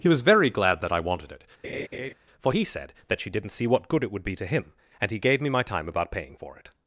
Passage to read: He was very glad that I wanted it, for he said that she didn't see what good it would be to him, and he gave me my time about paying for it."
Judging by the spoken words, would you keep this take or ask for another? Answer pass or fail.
pass